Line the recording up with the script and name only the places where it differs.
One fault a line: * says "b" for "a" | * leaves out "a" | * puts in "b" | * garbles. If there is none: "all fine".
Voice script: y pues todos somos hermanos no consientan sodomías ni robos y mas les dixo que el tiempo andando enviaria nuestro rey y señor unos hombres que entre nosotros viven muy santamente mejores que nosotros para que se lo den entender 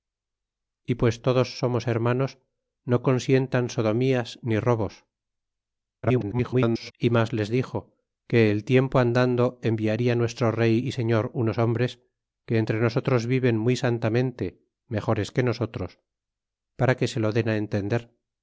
* garbles